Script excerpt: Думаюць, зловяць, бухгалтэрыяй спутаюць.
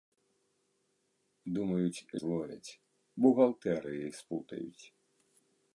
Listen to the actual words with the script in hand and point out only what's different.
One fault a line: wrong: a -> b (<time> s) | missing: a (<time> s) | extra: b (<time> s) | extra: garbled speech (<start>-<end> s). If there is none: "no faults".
no faults